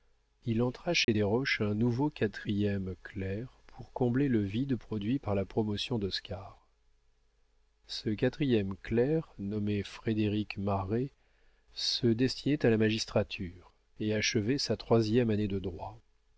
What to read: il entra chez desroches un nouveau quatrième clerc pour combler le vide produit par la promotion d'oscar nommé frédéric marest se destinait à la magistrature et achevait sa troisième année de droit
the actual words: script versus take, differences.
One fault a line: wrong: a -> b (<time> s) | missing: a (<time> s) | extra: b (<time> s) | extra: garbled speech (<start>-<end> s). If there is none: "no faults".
extra: ce quatrième clerc (7.9 s)